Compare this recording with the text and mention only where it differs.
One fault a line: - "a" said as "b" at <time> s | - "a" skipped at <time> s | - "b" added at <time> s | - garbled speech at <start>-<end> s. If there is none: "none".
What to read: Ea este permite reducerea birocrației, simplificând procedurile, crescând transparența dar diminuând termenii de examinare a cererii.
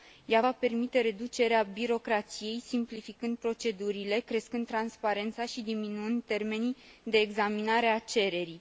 - "este" said as "va" at 0.4 s
- "dar" said as "și" at 5.5 s